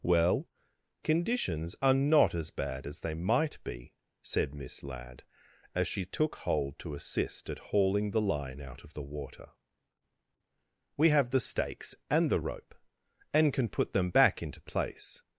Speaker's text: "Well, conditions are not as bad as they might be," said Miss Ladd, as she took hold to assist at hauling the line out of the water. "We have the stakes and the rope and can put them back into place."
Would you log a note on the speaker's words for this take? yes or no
no